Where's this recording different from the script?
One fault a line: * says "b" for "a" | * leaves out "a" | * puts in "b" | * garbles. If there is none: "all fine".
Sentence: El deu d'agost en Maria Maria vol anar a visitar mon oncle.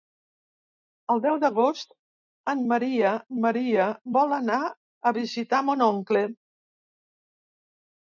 all fine